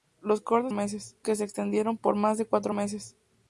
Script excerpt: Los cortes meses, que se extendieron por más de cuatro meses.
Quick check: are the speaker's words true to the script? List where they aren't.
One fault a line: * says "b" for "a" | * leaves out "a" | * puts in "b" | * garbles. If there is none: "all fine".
all fine